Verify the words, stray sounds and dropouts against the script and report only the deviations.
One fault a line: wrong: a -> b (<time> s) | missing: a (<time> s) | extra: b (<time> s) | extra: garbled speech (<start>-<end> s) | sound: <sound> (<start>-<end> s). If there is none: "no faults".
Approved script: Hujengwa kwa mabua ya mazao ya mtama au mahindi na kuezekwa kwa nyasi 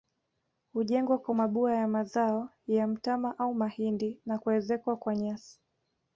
no faults